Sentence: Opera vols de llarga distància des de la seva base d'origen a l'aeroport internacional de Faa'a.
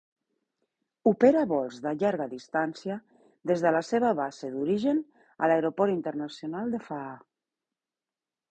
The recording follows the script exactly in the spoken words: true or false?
true